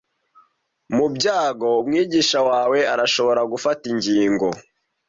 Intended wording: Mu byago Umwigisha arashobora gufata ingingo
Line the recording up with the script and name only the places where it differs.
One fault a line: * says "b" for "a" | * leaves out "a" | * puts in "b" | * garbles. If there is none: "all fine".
* puts in "wawe"